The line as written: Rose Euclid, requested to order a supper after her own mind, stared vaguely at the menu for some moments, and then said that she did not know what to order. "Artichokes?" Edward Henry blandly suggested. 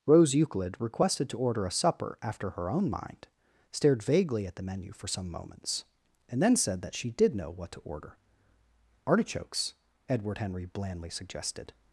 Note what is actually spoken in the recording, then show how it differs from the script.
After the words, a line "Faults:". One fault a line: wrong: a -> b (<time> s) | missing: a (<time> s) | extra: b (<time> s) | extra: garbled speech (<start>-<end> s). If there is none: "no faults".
Rose Euclid, requested to order a supper after her own mind, stared vaguely at the menu for some moments, and then said that she did know what to order. "Artichokes?" Edward Henry blandly suggested.
Faults:
missing: not (7.3 s)